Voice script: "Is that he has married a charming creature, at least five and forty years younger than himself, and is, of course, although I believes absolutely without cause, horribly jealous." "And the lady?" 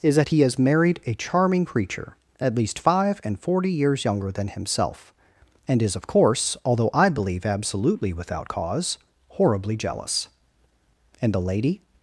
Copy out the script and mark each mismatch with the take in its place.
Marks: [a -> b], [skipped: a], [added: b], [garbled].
"Is that he has married a charming creature, at least five and forty years younger than himself, and is, of course, although I [believes -> believe] absolutely without cause, horribly jealous." "And the lady?"